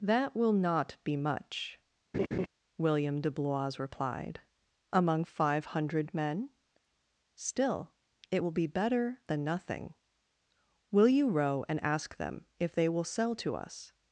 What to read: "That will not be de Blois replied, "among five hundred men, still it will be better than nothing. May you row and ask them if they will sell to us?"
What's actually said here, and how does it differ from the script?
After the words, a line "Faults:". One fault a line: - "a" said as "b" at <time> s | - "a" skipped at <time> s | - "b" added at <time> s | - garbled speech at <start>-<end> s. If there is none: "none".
"That will not be much," William de Blois replied, "among five hundred men, still it will be better than nothing. Will you row and ask them if they will sell to us?"
Faults:
- "much William" added at 1.1 s
- "May" said as "Will" at 10.9 s